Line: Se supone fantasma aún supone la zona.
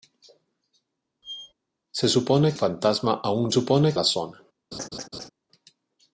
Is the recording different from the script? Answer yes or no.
no